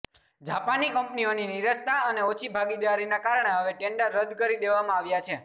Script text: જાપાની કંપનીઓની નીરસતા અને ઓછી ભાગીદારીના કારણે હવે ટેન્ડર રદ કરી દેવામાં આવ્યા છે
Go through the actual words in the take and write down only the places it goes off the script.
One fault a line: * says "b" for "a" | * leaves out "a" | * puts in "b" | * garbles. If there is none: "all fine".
all fine